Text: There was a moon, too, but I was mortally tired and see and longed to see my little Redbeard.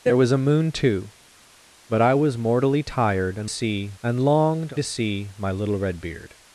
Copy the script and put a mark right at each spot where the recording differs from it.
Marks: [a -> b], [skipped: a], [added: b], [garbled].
There was a moon, too, but I was mortally tired and see and longed to see my little Redbeard.